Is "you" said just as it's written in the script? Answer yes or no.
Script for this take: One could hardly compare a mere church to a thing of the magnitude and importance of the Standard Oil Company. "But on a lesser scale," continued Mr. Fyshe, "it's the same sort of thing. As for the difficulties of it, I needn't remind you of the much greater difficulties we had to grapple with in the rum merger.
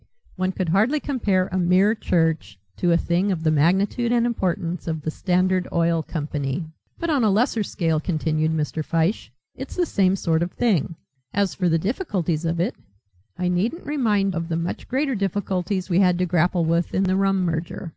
no